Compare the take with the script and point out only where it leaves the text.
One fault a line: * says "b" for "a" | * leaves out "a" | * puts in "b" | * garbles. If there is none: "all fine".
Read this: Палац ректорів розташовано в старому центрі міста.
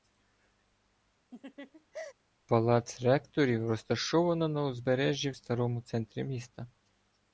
* puts in "на узбережжі"